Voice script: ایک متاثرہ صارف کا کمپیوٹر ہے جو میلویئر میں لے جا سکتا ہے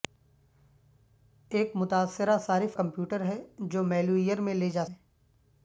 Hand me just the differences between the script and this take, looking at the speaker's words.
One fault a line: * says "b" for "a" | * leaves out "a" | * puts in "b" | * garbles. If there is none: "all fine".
* leaves out "کا"
* leaves out "سکتا"